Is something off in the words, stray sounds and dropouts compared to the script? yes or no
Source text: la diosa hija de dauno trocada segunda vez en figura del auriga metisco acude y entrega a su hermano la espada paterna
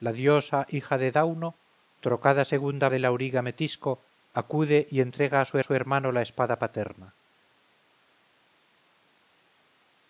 yes